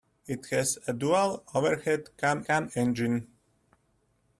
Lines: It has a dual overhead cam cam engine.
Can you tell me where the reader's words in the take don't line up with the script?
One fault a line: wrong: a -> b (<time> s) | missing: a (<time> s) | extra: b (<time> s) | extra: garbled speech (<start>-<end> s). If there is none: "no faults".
no faults